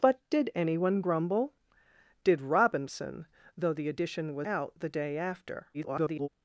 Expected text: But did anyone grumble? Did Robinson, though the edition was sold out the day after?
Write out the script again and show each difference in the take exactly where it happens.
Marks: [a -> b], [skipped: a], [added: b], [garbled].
But did anyone grumble? Did Robinson, though the edition was [skipped: sold] out the day after? [garbled]